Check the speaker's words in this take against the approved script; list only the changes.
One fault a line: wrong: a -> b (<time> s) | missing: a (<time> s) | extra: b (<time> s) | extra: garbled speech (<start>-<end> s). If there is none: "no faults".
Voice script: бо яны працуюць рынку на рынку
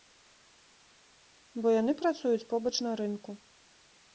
wrong: рынку -> побач (2.5 s)